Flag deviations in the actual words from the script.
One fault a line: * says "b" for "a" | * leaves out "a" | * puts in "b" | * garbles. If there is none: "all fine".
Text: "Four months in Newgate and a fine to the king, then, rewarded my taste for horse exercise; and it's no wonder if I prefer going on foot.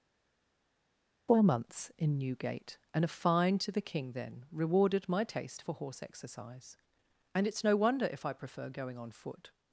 all fine